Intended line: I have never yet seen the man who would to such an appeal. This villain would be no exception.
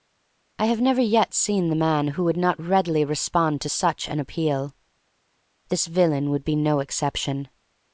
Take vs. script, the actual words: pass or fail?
fail